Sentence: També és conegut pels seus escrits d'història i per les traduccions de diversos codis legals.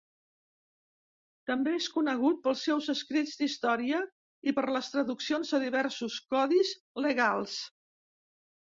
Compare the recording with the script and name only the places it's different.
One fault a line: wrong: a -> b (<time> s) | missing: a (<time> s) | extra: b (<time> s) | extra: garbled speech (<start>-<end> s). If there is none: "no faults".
no faults